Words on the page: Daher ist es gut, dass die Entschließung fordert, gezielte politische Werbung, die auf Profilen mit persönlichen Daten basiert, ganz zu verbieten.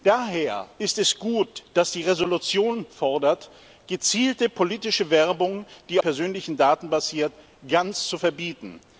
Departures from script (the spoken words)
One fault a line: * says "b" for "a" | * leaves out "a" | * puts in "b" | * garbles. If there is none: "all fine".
* leaves out "auf Profilen mit"